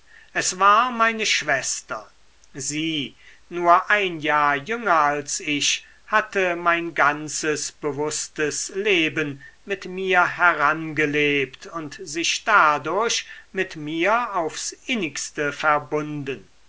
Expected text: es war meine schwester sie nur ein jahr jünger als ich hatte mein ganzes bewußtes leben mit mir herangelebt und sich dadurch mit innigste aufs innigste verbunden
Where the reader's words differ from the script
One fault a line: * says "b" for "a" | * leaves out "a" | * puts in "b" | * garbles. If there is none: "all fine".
* says "mir" for "innigste"